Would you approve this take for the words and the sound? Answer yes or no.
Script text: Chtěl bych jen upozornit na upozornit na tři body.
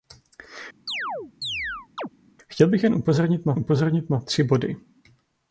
no